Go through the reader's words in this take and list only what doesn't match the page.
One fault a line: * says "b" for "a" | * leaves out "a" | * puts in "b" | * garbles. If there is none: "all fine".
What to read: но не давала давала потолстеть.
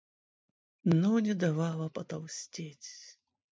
* leaves out "давала"